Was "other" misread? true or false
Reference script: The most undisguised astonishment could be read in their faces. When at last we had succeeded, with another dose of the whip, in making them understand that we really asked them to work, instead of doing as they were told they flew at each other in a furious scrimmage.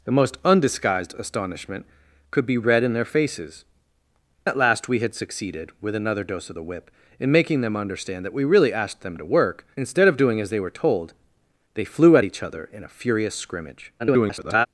false